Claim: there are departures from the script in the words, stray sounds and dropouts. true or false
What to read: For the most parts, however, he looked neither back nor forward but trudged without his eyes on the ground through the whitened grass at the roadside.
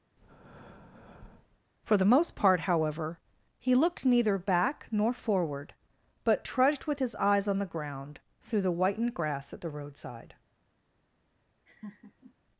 true